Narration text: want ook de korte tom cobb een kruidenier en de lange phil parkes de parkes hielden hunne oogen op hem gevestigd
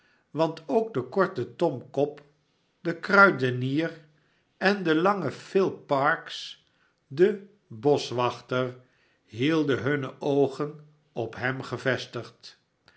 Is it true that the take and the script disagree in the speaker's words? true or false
true